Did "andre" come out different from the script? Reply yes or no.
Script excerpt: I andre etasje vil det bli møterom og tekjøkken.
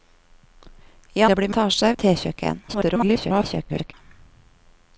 yes